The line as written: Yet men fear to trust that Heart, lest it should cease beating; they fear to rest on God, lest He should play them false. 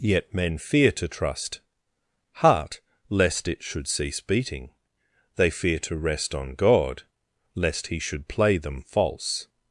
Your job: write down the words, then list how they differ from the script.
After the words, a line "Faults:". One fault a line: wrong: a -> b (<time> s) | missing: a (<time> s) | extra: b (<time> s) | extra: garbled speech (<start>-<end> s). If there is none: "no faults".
Yet men fear to trust Heart, lest it should cease beating; they fear to rest on God, lest He should play them false.
Faults:
missing: that (1.6 s)